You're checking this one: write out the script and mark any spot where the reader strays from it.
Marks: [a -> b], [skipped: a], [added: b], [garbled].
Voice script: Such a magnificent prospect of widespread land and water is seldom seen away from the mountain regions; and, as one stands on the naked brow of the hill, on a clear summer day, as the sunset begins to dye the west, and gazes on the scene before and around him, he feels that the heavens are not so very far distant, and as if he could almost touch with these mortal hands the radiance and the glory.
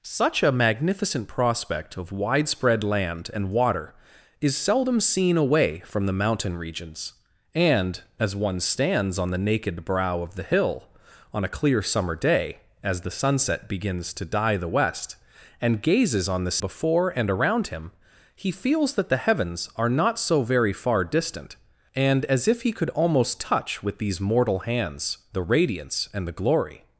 Such a magnificent prospect of widespread land and water is seldom seen away from the mountain regions; and, as one stands on the naked brow of the hill, on a clear summer day, as the sunset begins to dye the west, and gazes on the [skipped: scene] before and around him, he feels that the heavens are not so very far distant, and as if he could almost touch with these mortal hands the radiance and the glory.